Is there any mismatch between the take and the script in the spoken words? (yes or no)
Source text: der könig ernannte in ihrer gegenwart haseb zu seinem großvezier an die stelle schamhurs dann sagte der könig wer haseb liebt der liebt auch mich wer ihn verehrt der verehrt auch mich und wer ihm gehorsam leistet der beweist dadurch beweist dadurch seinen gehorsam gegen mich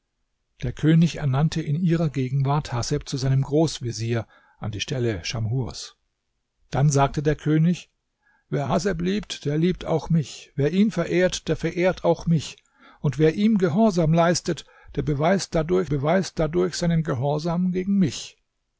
no